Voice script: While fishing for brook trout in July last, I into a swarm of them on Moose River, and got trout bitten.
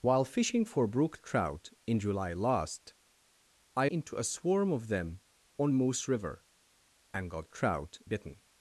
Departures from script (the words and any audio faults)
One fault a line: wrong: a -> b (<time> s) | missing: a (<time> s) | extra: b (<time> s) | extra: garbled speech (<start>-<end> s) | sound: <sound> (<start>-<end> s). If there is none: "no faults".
no faults